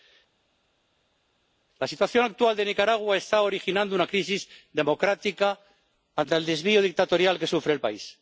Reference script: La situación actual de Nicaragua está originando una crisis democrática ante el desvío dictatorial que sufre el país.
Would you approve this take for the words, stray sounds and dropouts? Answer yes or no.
yes